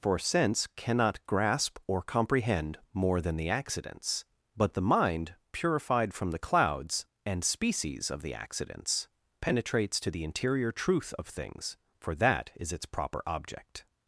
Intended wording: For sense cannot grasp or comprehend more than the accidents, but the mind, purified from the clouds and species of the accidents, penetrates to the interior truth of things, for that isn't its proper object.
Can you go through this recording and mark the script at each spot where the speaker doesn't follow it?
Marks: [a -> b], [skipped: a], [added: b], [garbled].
For sense cannot grasp or comprehend more than the accidents, but the mind, purified from the clouds and species of the accidents, penetrates to the interior truth of things, for that [isn't -> is] its proper object.